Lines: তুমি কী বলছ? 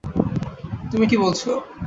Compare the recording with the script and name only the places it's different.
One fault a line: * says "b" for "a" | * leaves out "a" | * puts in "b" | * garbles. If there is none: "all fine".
all fine